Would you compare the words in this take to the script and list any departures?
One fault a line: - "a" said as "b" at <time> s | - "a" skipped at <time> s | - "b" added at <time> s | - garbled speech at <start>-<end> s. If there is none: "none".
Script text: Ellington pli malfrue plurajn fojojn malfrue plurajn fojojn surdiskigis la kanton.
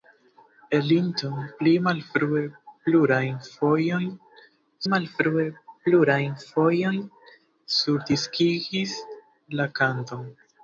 none